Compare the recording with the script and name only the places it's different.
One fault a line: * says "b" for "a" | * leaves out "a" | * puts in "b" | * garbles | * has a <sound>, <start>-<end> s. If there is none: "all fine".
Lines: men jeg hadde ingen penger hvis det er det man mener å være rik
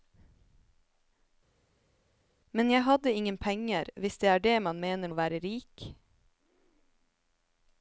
all fine